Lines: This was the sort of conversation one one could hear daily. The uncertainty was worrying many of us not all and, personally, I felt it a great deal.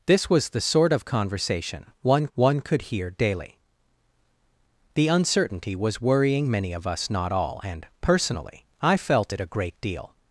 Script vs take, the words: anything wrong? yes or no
no